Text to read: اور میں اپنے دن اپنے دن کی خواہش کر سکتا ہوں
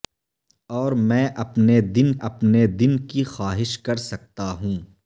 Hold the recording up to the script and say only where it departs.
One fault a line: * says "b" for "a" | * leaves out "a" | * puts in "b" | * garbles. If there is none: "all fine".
all fine